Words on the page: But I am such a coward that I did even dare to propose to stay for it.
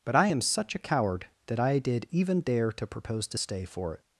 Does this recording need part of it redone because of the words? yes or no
no